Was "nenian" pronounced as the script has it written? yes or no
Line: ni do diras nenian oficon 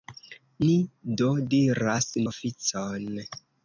no